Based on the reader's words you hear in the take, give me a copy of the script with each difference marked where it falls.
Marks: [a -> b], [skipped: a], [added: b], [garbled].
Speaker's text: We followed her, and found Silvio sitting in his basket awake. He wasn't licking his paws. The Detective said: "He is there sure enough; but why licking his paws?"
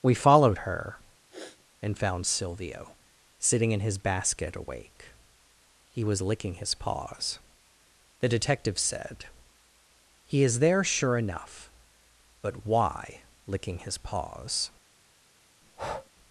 We followed her, and found Silvio sitting in his basket awake. He [wasn't -> was] licking his paws. The Detective said: "He is there sure enough; but why licking his paws?"